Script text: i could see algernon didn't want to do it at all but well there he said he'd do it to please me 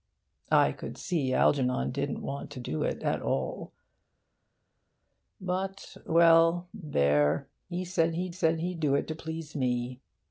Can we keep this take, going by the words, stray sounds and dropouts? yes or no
no